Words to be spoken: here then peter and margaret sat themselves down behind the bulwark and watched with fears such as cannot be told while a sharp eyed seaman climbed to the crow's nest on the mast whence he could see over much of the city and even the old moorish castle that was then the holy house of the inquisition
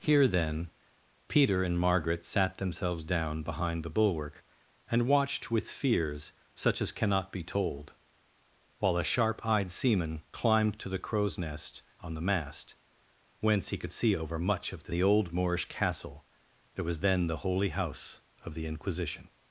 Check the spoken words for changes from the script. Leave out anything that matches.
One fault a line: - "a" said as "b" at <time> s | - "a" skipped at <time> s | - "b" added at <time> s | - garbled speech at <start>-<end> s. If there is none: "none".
- "city and even" skipped at 14.9 s